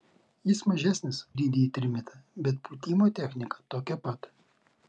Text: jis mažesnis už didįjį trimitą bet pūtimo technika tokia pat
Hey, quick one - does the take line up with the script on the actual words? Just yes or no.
no